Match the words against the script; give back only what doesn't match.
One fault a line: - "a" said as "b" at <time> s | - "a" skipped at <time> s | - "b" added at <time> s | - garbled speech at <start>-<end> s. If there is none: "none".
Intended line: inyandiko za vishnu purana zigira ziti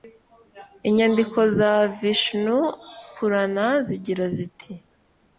none